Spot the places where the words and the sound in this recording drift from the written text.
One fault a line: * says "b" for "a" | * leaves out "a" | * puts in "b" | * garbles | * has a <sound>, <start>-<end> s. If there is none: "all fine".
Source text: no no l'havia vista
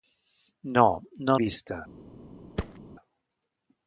* leaves out "l'havia"
* has a thud, 2.6-2.8 s